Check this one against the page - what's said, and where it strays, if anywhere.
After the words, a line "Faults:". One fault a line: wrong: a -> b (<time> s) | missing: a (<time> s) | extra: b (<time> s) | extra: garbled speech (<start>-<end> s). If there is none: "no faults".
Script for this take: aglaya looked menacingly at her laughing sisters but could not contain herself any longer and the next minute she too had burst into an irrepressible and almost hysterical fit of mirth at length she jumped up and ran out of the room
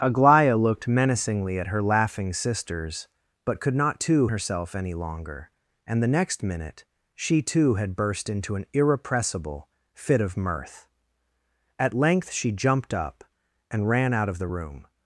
aglaya looked menacingly at her laughing sisters but could not too herself any longer and the next minute she too had burst into an irrepressible fit of mirth at length she jumped up and ran out of the room
Faults:
wrong: contain -> too (4.0 s)
missing: and almost hysterical (9.7 s)